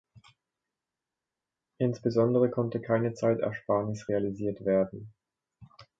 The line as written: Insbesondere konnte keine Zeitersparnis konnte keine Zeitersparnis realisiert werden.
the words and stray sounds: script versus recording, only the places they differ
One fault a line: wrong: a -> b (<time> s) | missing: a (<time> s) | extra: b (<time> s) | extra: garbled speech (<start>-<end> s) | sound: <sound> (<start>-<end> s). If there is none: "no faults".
missing: konnte keine Zeitersparnis (4.1 s)